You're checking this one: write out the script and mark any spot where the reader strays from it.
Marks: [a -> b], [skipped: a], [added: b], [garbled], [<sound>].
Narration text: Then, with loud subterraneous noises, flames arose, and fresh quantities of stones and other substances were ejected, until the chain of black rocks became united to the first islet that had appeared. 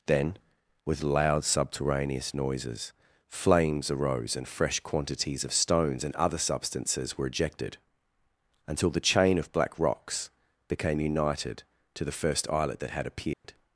Then, with loud subterraneous noises, flames arose, and fresh quantities of stones and other substances were ejected, until the chain of black rocks became united to the first islet that had appeared. [dropout]